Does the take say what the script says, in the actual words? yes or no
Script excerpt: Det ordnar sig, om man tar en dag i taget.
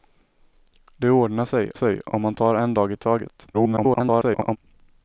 no